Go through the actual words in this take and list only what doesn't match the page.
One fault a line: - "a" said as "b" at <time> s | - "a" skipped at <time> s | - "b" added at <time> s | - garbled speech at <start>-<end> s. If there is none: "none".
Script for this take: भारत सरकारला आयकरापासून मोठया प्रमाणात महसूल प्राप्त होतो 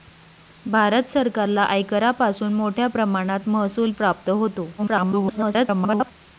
- garbled speech at 4.8-6.1 s